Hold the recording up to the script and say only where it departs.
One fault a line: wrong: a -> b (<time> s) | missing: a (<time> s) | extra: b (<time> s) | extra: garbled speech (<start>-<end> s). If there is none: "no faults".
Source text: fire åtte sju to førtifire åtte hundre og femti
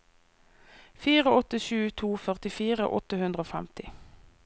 no faults